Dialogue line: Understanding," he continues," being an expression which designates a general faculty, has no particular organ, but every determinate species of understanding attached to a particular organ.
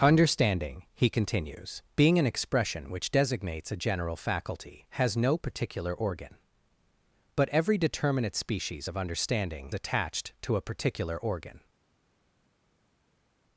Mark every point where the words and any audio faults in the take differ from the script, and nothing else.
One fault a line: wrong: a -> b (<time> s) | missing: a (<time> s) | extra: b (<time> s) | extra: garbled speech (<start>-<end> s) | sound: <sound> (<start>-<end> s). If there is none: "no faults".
no faults